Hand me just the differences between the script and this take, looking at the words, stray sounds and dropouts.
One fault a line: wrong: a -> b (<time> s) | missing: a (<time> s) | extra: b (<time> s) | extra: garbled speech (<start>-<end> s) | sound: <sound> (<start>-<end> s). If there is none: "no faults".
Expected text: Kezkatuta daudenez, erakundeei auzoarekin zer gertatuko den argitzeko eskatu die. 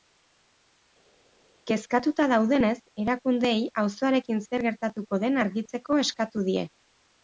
no faults